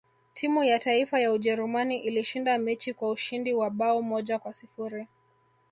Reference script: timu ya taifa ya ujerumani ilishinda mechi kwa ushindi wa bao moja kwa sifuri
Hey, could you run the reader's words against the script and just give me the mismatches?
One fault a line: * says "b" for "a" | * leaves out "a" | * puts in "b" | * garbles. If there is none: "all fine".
all fine